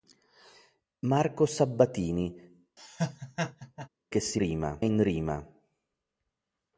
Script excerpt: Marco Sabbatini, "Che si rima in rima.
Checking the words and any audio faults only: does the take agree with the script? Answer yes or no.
no